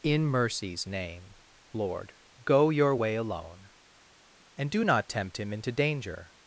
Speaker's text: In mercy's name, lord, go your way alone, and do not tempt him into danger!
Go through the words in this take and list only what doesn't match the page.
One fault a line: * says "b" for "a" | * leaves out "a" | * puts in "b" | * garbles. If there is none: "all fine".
all fine